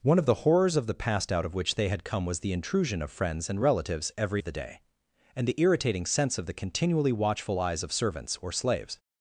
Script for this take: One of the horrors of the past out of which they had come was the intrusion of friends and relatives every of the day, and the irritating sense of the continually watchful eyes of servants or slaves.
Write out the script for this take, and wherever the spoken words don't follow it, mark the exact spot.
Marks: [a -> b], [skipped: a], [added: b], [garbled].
One of the horrors of the past out of which they had come was the intrusion of friends and relatives every of the day, and the irritating sense of the continually watchful eyes of servants or slaves.